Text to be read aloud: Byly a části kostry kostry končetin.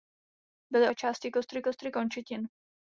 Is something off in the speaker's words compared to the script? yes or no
no